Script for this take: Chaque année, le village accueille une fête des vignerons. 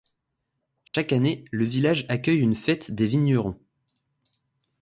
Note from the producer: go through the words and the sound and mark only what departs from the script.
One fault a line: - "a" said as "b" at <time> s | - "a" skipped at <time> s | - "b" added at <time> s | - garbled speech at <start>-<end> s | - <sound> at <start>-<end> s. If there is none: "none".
- dropout at 0.9-0.9 s